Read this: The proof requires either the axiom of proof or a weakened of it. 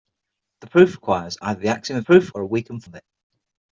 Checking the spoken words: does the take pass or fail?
pass